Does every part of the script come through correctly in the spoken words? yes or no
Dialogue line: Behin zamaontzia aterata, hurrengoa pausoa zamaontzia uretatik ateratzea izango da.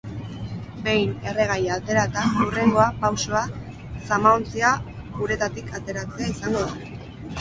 no